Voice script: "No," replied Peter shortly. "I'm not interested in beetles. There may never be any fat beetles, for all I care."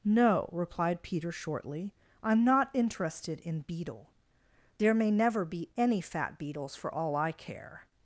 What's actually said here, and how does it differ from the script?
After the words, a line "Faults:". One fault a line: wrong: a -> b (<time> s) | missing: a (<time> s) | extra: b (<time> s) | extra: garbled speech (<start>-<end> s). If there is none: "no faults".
"No," replied Peter shortly. "I'm not interested in beetle. There may never be any fat beetles, for all I care."
Faults:
wrong: beetles -> beetle (3.6 s)